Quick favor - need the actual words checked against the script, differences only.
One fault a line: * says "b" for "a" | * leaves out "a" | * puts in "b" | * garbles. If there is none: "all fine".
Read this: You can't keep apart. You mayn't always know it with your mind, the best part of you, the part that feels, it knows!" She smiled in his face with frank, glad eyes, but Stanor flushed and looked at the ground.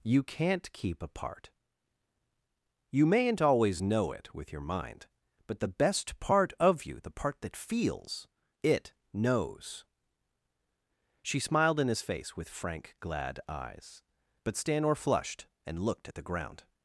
* puts in "but"